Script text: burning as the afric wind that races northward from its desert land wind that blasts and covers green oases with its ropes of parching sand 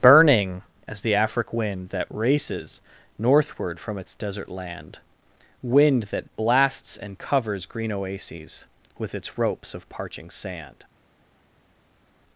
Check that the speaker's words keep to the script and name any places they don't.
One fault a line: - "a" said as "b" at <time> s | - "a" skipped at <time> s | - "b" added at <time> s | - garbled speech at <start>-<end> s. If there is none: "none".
none